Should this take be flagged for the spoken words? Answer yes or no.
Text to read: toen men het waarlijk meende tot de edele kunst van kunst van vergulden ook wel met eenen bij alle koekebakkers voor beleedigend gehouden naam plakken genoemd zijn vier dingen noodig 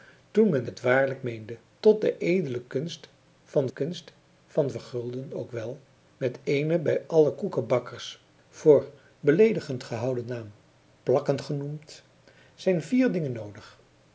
no